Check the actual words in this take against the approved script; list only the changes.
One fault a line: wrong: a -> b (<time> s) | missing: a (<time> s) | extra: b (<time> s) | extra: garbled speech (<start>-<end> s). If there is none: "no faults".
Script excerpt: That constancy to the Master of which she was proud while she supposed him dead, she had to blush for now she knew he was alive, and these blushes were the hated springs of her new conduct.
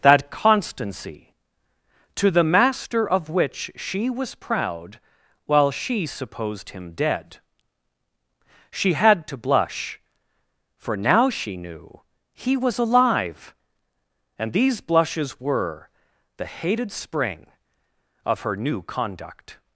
wrong: springs -> spring (16.9 s)